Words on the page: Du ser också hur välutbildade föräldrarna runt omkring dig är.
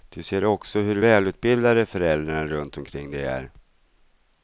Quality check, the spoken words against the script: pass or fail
pass